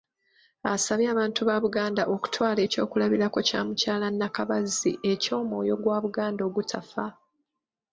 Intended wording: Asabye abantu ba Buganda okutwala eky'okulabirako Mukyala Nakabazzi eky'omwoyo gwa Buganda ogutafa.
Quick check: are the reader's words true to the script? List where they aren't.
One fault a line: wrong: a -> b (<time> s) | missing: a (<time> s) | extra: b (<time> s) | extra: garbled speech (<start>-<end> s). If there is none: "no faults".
extra: kya (3.5 s)